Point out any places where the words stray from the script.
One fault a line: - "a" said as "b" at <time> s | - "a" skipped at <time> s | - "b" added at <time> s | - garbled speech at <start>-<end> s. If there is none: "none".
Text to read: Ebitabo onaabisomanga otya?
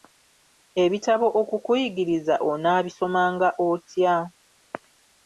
- "okukuyigiriza" added at 1.4 s